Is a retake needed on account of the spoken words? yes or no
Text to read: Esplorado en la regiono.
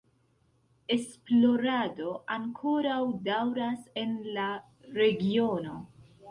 yes